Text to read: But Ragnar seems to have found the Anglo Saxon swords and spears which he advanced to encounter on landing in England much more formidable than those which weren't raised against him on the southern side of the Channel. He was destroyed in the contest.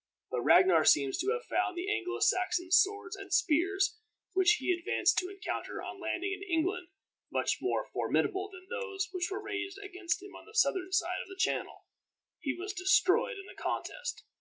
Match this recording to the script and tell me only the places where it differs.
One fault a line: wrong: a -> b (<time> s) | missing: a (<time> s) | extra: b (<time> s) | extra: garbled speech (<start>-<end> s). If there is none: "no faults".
wrong: weren't -> were (9.3 s)